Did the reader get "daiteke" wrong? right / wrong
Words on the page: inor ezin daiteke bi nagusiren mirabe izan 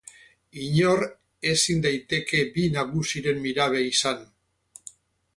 right